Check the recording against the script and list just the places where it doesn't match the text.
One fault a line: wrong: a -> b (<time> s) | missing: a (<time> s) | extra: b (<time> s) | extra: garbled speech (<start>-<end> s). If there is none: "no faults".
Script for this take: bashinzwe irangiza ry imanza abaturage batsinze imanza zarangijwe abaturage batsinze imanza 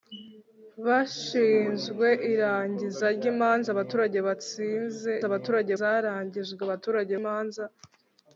wrong: imanza -> abaturage (5.3 s)
missing: batsinze (7.1 s)